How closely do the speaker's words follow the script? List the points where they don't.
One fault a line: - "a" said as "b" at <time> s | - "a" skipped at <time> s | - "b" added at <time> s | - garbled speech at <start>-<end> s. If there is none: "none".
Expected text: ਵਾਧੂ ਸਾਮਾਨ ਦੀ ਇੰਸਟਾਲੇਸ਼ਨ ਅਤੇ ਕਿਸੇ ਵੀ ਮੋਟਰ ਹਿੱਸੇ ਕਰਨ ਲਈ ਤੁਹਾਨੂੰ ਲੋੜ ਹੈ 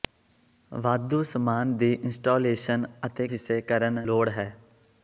- "ਕਿਸੇ ਵੀ ਮੋਟਰ" skipped at 3.3 s
- "ਲਈ ਤੁਹਾਨੂੰ" skipped at 4.0 s